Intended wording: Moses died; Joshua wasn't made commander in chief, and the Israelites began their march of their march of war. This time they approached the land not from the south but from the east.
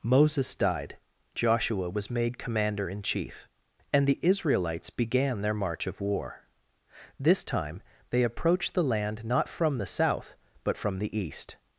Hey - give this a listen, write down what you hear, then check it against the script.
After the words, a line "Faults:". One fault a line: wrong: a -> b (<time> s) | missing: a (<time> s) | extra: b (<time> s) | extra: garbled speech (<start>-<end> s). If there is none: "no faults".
Moses died; Joshua was made commander in chief, and the Israelites began their march of war. This time they approached the land not from the south but from the east.
Faults:
wrong: wasn't -> was (1.9 s)
missing: their march of (6.0 s)